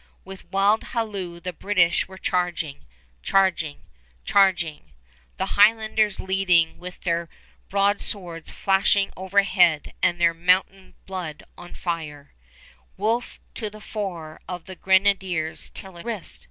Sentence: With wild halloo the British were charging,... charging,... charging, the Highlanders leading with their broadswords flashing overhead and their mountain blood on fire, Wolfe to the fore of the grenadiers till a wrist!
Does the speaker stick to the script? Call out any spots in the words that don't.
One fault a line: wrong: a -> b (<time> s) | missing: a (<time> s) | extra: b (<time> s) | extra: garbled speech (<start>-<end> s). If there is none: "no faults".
no faults